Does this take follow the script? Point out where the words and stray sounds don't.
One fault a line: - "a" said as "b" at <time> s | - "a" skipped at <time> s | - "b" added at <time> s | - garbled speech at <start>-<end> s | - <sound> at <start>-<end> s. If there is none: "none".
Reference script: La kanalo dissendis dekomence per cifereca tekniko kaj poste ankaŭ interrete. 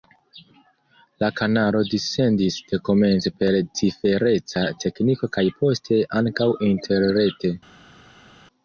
none